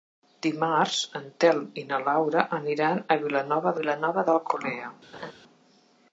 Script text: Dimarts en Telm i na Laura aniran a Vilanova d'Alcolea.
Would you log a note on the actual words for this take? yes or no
yes